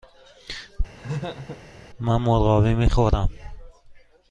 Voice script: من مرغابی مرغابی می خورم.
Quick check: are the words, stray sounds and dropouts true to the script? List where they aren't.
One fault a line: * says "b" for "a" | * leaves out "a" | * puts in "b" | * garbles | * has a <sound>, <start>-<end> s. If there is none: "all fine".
* has a laugh, 0.9-1.6 s
* leaves out "مرغابی"